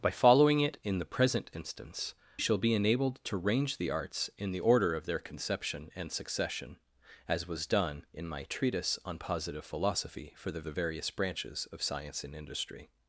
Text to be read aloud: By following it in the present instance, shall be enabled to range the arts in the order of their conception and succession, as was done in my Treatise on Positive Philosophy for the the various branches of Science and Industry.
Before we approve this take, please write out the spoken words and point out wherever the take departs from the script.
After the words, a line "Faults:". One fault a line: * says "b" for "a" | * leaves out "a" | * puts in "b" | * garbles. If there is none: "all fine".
By following it in the present instance, shall be enabled to range the arts in the order of their conception and succession, as was done in my Treatise on Positive Philosophy for the the various branches of Science and Industry.
Faults:
all fine